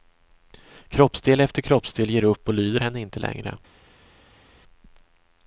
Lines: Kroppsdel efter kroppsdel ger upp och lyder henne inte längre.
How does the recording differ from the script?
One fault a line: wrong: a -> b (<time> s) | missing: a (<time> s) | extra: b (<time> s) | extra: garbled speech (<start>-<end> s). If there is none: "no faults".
no faults